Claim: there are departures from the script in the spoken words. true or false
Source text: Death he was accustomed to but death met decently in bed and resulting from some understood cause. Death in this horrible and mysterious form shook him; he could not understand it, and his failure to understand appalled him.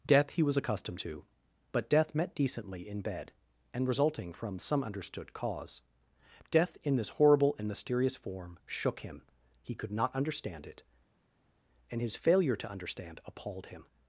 false